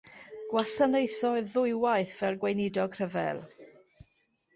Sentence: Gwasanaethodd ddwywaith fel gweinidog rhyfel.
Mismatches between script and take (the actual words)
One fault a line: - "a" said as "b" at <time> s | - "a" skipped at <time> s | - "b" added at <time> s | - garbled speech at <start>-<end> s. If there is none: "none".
none